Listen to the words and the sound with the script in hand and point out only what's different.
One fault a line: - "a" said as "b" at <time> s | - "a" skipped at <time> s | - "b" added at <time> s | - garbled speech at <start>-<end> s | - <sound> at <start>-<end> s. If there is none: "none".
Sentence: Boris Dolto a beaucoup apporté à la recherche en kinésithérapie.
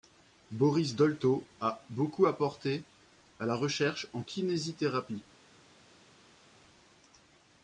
none